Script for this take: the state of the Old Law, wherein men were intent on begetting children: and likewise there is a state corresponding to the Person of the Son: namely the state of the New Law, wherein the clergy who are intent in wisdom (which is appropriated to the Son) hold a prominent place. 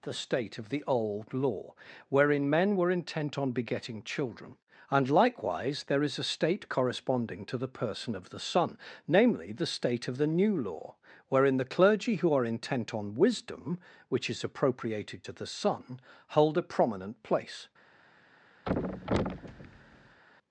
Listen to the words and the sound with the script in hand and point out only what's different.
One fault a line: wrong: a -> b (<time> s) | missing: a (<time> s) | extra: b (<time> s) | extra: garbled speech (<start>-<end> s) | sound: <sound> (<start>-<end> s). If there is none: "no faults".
wrong: in -> on (12.9 s)
sound: thud (18.7-20.2 s)